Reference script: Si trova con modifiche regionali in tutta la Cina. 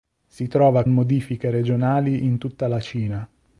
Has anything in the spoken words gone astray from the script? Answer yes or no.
yes